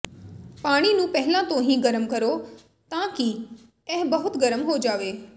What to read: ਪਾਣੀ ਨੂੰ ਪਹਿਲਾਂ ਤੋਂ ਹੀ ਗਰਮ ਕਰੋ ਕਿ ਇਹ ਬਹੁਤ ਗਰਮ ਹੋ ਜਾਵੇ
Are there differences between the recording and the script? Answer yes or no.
yes